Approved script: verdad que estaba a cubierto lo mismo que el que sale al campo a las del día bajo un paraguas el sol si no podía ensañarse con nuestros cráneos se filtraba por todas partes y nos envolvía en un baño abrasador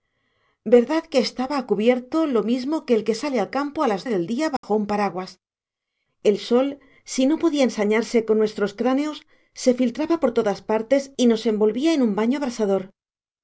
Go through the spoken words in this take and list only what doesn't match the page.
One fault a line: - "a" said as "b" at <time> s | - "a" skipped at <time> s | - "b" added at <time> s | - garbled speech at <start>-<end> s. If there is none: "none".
none